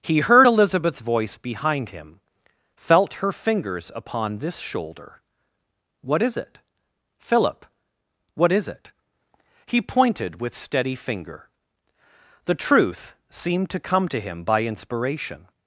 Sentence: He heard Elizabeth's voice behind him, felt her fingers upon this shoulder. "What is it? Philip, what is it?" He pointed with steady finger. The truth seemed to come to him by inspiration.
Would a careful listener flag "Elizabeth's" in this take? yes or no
no